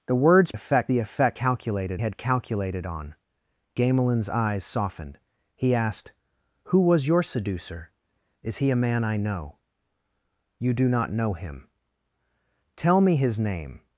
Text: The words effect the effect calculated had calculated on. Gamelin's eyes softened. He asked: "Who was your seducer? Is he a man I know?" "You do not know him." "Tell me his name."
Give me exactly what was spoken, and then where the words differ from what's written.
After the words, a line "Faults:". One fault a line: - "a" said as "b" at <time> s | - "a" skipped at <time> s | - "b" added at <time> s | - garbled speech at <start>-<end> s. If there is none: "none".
The words effect the effect calculated had calculated on. Gamelin's eyes softened. He asked: "Who was your seducer? Is he a man I know?" "You do not know him." "Tell me his name."
Faults:
none